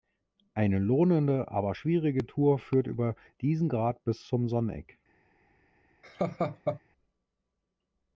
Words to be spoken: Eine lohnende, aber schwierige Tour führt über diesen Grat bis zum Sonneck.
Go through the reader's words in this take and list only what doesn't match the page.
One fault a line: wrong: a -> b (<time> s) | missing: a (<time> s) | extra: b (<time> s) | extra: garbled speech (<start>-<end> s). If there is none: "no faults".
no faults